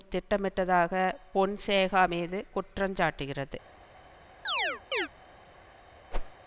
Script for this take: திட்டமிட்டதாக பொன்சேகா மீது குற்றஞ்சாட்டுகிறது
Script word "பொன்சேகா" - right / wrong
right